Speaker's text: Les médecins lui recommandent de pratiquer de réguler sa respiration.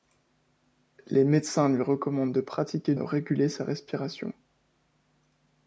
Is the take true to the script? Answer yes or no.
yes